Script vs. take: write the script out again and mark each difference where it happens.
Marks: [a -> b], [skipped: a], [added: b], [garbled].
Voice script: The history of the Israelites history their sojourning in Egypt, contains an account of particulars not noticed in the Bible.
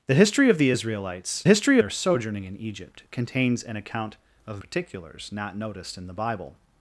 The history of the Israelites history their sojourning in Egypt, contains an account of particulars not noticed in the Bible.